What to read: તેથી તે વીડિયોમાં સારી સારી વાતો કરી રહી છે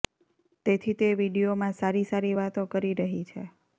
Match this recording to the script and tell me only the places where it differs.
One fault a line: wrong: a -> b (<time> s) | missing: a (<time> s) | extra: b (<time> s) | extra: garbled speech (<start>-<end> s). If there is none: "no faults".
no faults